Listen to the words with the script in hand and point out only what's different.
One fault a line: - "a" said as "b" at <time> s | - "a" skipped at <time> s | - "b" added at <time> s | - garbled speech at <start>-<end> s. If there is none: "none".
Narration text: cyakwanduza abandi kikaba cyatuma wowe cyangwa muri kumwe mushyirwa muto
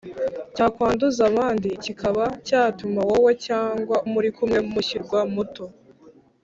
none